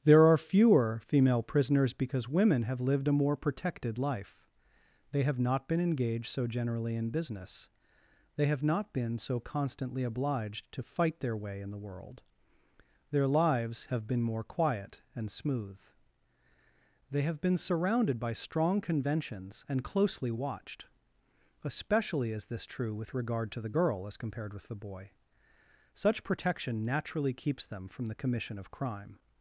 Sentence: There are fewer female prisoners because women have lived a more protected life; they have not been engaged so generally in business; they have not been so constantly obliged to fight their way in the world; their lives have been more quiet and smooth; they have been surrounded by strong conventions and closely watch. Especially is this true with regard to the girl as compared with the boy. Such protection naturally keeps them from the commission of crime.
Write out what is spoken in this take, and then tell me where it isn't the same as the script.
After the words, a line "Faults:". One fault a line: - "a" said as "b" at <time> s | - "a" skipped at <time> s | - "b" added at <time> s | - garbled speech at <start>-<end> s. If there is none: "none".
There are fewer female prisoners because women have lived a more protected life; they have not been engaged so generally in business; they have not been so constantly obliged to fight their way in the world; their lives have been more quiet and smooth; they have been surrounded by strong conventions and closely watched. Especially is this true with regard to the girl as compared with the boy. Such protection naturally keeps them from the commission of crime.
Faults:
- "watch" said as "watched" at 20.3 s